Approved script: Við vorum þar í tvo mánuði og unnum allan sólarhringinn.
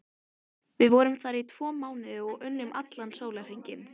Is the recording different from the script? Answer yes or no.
no